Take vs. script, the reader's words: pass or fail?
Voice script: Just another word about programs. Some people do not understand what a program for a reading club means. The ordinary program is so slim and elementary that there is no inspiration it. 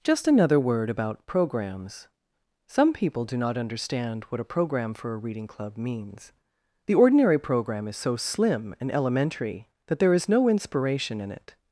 fail